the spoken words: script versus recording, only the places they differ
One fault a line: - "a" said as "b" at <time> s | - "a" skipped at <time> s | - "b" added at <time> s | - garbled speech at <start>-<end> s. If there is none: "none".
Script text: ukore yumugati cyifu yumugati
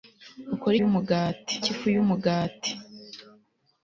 none